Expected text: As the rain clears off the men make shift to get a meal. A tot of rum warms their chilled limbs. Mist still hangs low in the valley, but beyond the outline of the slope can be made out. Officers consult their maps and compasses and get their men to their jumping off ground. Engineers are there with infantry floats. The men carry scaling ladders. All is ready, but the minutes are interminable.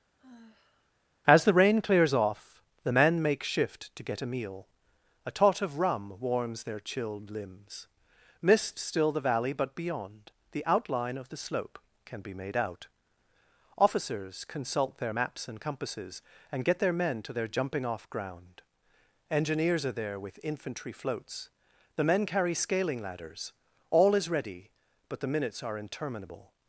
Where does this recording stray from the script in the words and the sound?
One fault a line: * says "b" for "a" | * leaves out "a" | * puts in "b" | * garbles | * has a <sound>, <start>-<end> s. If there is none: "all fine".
* has a sigh, 0.2-0.9 s
* leaves out "hangs low in"